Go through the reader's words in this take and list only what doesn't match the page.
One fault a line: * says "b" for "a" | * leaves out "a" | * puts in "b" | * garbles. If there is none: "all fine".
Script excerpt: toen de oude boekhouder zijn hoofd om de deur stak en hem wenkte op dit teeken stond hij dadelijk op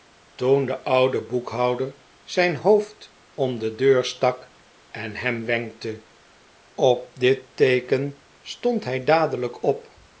all fine